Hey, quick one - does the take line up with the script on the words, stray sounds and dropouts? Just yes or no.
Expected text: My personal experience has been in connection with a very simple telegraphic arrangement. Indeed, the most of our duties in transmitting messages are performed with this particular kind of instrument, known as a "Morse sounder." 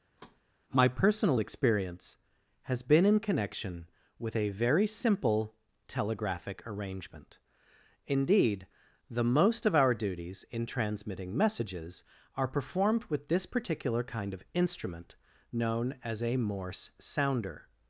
no